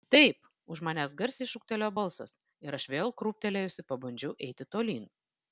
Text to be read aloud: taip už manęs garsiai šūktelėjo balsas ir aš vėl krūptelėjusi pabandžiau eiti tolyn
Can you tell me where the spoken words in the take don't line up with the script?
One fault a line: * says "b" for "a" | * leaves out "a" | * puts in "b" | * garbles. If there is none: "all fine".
all fine